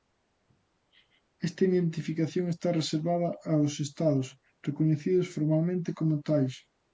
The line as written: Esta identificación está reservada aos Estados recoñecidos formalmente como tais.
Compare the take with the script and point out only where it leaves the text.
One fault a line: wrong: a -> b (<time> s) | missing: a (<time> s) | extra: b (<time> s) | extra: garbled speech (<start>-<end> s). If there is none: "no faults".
no faults